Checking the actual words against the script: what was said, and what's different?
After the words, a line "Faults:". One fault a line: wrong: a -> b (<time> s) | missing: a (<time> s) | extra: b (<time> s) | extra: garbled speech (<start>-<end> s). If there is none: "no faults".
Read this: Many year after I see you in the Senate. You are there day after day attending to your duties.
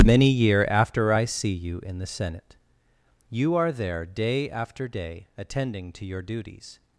Many year after I see you in the Senate. You are there day after day attending to your duties.
Faults:
no faults